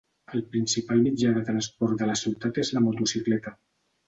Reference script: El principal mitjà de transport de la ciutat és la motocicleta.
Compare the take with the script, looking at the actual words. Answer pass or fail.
pass